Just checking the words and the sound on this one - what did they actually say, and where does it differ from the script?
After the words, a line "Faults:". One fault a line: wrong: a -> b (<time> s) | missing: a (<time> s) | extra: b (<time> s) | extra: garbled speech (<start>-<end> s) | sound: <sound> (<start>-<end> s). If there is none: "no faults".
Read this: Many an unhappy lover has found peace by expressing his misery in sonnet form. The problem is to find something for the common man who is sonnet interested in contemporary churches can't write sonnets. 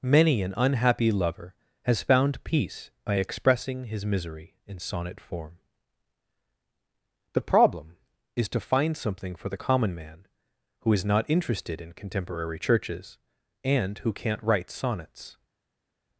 Many an unhappy lover has found peace by expressing his misery in sonnet form. The problem is to find something for the common man who is not interested in contemporary churches and who can't write sonnets.
Faults:
wrong: sonnet -> not (11.1 s)
extra: and who (13.6 s)